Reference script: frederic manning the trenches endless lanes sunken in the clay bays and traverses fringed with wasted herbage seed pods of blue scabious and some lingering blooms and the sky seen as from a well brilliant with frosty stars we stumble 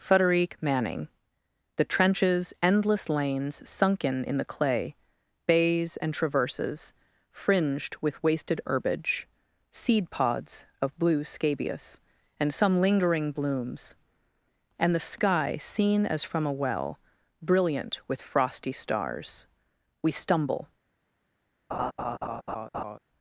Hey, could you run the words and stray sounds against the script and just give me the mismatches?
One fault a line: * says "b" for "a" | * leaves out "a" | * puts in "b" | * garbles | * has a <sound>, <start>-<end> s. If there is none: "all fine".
* has a laugh, 21.7-23.0 s